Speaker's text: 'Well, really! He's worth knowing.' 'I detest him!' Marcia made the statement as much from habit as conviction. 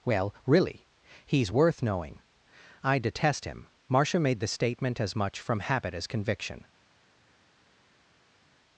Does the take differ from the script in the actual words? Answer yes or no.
no